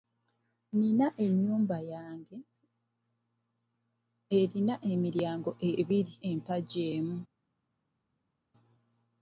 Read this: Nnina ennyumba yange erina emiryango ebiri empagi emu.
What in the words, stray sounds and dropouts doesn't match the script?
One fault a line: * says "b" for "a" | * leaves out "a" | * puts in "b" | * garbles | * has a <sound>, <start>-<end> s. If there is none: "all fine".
all fine